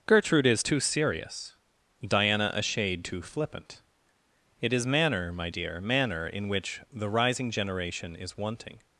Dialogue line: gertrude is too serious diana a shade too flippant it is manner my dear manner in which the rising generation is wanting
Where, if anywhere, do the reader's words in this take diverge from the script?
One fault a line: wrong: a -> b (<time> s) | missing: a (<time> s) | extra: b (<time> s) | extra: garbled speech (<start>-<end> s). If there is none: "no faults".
no faults